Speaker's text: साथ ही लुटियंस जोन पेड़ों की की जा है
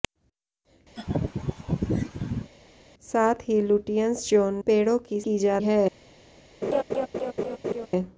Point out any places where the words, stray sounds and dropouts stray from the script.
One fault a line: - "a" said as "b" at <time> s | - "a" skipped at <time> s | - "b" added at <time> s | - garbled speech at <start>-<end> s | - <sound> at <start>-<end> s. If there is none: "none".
- laugh at 1.0-2.5 s
- laugh at 6.6-7.9 s